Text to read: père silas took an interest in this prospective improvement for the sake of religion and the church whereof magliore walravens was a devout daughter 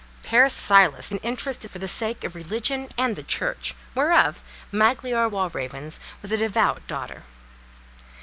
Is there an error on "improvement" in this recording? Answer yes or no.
yes